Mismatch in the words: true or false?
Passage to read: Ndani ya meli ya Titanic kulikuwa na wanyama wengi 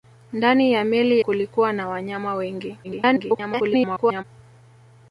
true